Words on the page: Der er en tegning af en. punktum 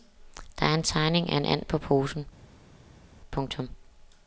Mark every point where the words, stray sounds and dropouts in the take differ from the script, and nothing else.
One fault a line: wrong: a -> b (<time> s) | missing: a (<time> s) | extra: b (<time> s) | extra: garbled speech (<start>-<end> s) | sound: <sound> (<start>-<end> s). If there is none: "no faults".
extra: and på posen (1.4 s)